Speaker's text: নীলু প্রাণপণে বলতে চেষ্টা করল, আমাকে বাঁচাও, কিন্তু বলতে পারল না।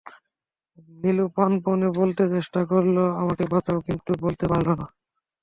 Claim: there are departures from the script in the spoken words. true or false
false